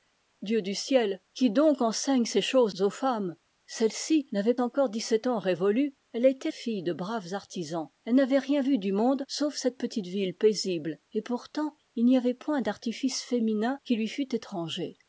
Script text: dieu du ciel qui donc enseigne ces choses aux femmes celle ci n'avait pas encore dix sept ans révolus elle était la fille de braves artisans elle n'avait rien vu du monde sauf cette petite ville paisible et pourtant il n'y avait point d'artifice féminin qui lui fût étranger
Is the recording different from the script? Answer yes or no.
yes